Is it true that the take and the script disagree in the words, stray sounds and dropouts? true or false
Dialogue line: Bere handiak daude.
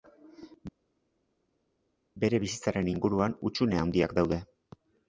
true